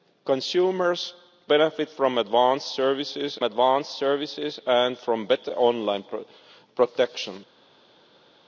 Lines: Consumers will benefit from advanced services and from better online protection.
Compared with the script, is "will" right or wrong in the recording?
wrong